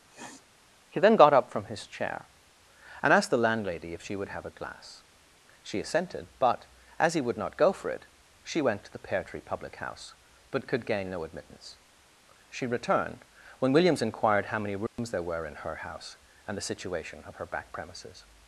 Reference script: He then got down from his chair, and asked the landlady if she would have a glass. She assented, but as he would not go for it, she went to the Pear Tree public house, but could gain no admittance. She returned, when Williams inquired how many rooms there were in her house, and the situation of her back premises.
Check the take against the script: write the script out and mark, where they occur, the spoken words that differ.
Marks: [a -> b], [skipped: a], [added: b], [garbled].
He then got [down -> up] from his chair, and asked the landlady if she would have a glass. She assented, but as he would not go for it, she went to the Pear Tree public house, but could gain no admittance. She returned, when Williams inquired how many rooms there were in her house, and the situation of her back premises.